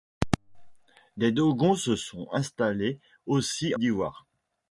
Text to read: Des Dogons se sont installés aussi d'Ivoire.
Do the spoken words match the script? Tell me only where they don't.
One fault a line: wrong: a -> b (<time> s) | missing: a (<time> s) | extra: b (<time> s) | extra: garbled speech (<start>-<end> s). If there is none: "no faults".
no faults